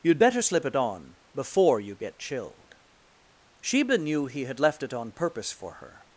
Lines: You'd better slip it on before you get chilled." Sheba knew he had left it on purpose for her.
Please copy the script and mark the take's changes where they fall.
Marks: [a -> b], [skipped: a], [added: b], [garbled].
You'd better slip it on before you get chilled." Sheba knew he had left it on purpose for her.